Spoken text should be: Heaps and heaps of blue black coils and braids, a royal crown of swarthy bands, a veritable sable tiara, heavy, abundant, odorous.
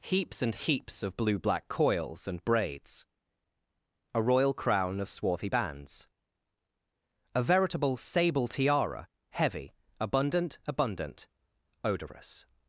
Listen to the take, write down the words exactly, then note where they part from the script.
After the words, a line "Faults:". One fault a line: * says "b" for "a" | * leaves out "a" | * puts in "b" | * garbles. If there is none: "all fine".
Heaps and heaps of blue black coils and braids, a royal crown of swarthy bands, a veritable sable tiara, heavy, abundant abundant, odorous.
Faults:
* puts in "abundant"